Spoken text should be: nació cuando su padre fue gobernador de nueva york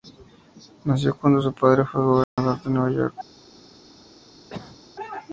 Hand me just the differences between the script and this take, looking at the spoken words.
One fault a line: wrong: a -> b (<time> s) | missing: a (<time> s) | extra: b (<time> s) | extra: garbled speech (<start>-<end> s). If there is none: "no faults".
no faults